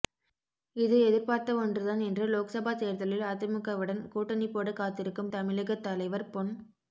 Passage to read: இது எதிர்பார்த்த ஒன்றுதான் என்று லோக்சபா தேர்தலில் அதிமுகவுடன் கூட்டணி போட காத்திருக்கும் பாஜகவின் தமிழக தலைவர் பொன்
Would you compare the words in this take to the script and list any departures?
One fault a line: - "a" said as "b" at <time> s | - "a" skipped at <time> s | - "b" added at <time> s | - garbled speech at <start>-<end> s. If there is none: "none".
- "பாஜகவின்" skipped at 5.3 s